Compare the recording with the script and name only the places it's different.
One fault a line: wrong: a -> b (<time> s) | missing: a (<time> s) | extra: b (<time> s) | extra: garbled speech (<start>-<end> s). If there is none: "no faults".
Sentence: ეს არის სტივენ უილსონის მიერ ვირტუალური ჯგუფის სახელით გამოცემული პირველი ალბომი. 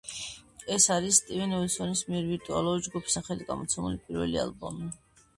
no faults